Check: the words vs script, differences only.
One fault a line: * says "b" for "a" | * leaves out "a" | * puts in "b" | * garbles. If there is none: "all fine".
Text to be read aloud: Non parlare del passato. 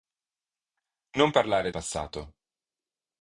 * leaves out "del"